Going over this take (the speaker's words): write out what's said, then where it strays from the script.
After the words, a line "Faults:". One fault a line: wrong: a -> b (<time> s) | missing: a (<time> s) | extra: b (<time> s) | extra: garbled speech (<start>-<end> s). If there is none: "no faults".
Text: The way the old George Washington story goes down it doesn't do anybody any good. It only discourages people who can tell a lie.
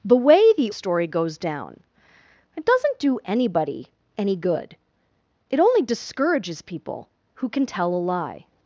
The way the story goes down it doesn't do anybody any good. It only discourages people who can tell a lie.
Faults:
missing: old George Washington (0.7 s)